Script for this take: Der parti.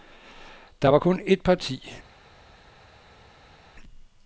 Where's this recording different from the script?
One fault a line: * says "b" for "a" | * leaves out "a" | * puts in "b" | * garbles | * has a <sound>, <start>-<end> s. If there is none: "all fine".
* puts in "var kun et"